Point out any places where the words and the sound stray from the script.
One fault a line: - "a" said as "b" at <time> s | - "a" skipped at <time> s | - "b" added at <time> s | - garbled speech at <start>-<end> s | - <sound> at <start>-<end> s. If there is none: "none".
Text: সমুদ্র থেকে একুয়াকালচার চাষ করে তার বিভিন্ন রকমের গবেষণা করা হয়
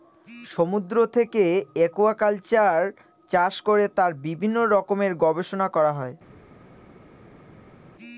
none